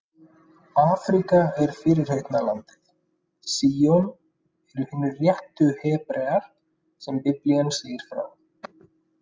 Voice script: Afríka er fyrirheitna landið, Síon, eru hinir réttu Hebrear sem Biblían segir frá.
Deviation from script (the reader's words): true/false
false